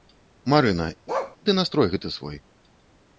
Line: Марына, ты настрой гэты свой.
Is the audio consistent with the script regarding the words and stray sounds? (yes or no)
no